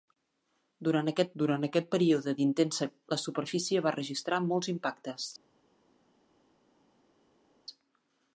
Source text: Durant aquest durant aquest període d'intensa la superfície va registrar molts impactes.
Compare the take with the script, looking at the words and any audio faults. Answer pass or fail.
pass